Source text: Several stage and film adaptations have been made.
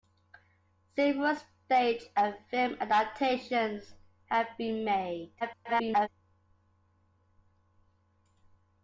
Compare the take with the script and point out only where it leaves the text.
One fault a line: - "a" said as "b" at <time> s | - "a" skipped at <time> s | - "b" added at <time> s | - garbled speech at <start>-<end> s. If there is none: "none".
- garbled speech at 5.4-6.1 s